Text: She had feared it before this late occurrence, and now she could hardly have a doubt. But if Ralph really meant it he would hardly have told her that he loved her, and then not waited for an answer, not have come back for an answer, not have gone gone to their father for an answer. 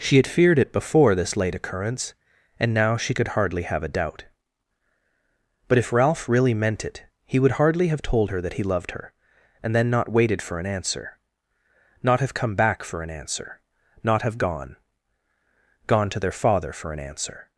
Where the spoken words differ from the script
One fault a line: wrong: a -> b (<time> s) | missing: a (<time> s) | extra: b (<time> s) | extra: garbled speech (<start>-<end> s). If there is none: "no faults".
no faults